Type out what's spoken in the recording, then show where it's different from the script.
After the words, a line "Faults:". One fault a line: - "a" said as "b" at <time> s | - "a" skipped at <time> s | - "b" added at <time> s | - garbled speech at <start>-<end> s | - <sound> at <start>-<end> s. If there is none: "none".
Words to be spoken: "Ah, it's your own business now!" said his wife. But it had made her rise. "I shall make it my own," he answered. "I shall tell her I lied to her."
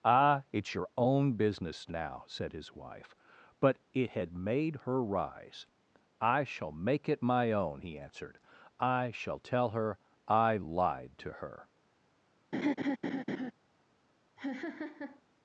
"Ah, it's your own business now!" said his wife. But it had made her rise. "I shall make it my own," he answered. "I shall tell her I lied to her."
Faults:
- laugh at 12.5-13.5 s
- laugh at 14.4-15.2 s